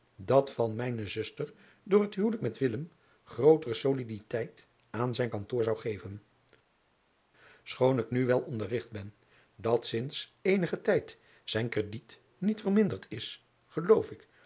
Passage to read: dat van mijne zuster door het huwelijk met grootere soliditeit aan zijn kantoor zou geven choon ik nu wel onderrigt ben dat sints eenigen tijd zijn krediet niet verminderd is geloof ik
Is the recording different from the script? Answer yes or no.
no